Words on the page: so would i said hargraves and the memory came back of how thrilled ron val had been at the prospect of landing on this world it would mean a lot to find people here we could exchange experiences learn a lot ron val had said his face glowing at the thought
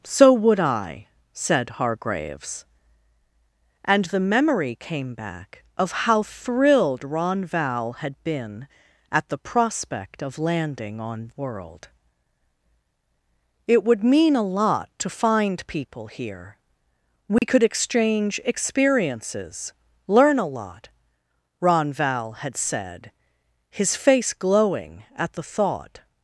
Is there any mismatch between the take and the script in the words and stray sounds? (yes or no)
yes